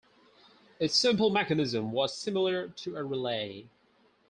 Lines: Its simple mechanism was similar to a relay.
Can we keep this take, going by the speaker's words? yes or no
yes